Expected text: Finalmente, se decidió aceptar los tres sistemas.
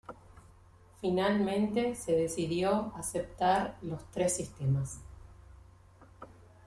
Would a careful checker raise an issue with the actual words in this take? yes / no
no